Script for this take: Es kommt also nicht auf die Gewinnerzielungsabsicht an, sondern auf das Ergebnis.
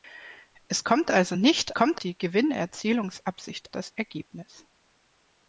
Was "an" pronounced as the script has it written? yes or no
no